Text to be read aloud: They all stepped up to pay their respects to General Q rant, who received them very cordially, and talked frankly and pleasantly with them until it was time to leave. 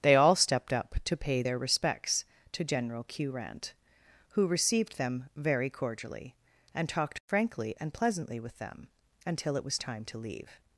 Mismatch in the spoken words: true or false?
false